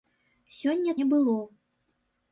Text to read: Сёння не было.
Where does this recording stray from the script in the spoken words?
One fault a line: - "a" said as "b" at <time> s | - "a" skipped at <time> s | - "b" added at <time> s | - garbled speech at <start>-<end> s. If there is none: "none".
none